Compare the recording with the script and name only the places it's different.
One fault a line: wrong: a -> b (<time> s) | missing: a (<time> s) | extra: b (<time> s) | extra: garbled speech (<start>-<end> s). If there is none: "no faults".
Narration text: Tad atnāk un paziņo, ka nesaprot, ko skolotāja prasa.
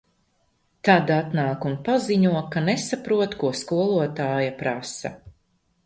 no faults